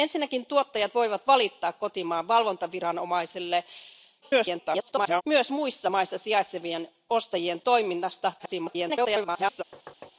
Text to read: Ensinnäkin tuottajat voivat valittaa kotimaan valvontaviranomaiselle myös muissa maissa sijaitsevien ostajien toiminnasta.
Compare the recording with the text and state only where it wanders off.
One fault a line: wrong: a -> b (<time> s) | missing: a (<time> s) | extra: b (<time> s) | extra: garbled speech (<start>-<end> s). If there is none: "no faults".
extra: garbled speech (4.2-5.2 s)
extra: garbled speech (8.4-9.6 s)